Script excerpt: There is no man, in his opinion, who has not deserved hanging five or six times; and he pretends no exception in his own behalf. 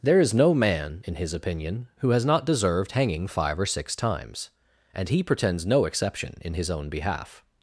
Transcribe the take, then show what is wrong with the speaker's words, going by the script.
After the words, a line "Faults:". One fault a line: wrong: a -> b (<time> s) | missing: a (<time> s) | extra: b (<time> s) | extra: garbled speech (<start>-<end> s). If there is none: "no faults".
There is no man, in his opinion, who has not deserved hanging five or six times; and he pretends no exception in his own behalf.
Faults:
no faults